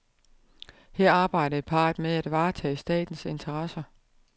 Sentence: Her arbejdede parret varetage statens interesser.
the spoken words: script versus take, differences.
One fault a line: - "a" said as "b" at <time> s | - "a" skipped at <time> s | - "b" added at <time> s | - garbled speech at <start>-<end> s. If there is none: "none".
- "med at" added at 2.0 s